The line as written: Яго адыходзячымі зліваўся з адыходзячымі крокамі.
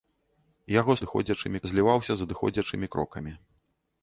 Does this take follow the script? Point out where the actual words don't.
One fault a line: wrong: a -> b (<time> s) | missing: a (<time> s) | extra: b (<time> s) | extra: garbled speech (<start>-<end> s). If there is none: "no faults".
no faults